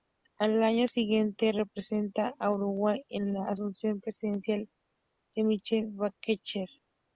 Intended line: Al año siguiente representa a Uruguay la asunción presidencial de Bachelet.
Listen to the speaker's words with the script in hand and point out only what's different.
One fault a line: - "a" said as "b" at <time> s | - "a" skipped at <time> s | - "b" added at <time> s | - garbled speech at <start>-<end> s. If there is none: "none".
- "en" added at 3.1 s
- "Michelle" added at 5.4 s